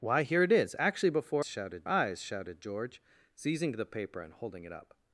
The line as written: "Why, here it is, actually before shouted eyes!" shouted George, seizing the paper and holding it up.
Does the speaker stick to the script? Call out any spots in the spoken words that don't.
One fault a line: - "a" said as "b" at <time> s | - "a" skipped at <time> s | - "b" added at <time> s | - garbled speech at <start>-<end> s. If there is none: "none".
none